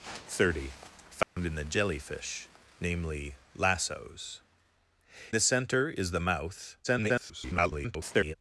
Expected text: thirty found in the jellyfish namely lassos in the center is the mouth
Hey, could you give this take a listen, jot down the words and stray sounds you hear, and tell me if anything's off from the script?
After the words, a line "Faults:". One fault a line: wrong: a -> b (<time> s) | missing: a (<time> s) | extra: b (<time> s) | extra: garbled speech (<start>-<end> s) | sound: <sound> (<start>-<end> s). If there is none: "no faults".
thirty found in the jellyfish namely lassos the center is the mouth [garbled]
Faults:
sound: dropout (1.2-1.4 s)
missing: in (4.4 s)
extra: garbled speech (6.8-8.4 s)